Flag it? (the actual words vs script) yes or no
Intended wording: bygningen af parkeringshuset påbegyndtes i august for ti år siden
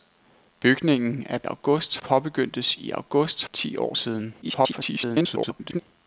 yes